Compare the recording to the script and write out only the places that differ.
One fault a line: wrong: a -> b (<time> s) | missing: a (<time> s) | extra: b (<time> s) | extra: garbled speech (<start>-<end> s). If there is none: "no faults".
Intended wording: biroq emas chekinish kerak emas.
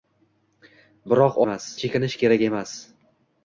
no faults